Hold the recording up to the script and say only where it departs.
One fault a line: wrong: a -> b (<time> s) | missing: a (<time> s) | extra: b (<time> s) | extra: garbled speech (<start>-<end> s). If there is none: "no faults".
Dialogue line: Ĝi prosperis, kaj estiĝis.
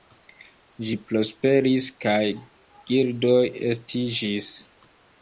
extra: gildoj (2.9 s)